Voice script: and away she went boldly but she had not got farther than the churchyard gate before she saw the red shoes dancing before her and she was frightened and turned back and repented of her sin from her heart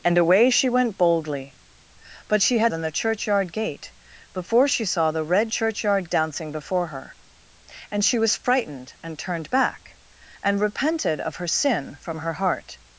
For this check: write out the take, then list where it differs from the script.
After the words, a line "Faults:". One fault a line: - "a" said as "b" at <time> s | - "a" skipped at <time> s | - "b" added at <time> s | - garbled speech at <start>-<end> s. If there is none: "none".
and away she went boldly but she had than the churchyard gate before she saw the red churchyard dancing before her and she was frightened and turned back and repented of her sin from her heart
Faults:
- "not got farther" skipped at 2.7 s
- "shoes" said as "churchyard" at 5.5 s